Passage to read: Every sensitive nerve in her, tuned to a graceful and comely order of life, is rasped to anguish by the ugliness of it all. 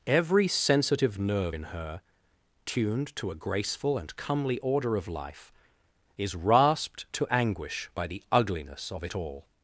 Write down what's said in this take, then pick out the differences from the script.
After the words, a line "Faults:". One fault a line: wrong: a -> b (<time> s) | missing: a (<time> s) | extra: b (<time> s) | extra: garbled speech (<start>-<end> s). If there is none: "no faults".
Every sensitive nerve in her, tuned to a graceful and comely order of life, is rasped to anguish by the ugliness of it all.
Faults:
no faults